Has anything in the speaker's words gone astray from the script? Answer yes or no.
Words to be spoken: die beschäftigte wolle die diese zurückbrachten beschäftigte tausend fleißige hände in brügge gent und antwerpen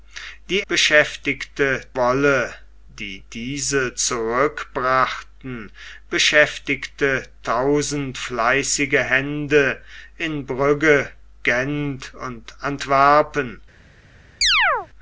no